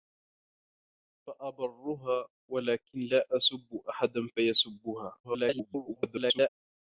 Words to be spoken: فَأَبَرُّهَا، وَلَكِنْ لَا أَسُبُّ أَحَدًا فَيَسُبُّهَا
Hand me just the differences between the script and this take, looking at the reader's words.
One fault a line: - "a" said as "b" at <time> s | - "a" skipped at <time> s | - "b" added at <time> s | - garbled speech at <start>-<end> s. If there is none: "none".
- garbled speech at 5.2-6.5 s